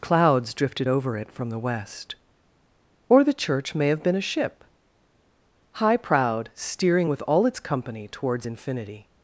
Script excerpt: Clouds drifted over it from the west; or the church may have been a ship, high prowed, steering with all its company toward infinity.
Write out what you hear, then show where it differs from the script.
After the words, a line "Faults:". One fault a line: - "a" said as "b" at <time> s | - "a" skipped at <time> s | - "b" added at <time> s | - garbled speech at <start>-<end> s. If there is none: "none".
Clouds drifted over it from the west; or the church may have been a ship, high prowed, steering with all its company towards infinity.
Faults:
- "toward" said as "towards" at 8.1 s